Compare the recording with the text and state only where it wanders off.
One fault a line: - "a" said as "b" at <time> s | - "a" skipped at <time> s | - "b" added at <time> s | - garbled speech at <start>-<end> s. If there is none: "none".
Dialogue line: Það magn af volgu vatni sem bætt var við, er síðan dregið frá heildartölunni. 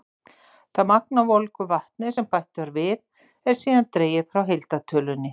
none